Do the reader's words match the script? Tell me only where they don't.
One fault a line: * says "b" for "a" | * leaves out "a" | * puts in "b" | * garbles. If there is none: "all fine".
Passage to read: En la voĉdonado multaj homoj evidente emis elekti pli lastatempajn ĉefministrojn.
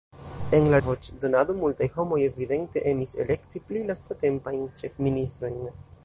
all fine